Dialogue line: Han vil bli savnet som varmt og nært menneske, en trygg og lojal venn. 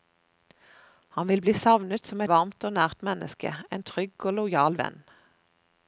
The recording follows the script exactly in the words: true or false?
true